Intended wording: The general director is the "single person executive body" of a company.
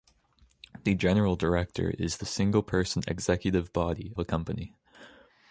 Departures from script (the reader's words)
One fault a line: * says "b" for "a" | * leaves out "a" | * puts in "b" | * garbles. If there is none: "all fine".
* leaves out "of"